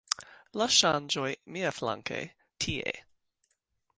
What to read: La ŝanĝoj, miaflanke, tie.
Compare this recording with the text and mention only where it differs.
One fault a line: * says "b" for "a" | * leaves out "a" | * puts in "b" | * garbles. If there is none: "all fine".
all fine